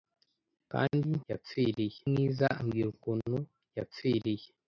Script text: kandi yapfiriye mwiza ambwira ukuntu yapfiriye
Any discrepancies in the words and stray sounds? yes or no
no